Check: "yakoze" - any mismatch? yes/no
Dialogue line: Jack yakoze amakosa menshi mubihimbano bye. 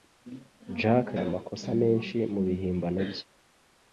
yes